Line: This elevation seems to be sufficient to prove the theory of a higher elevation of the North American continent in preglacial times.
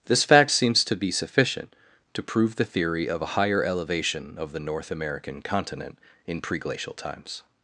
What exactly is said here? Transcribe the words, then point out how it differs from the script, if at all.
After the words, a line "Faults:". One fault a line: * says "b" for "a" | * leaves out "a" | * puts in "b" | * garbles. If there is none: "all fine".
This fact seems to be sufficient to prove the theory of a higher elevation of the North American continent in preglacial times.
Faults:
* says "fact" for "elevation"